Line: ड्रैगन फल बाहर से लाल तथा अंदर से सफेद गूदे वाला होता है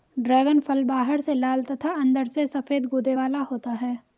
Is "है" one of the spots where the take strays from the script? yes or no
no